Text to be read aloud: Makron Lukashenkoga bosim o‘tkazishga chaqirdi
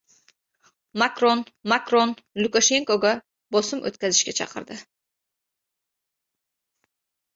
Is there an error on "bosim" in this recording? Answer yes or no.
no